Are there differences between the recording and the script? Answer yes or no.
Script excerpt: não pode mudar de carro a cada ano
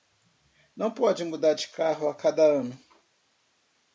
no